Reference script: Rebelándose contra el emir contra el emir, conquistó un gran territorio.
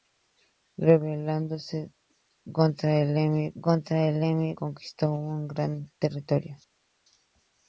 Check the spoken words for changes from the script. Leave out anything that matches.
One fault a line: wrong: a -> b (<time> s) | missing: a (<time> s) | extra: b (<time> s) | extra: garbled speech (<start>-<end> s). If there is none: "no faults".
no faults